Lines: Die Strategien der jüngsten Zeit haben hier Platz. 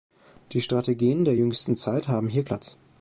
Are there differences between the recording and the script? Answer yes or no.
no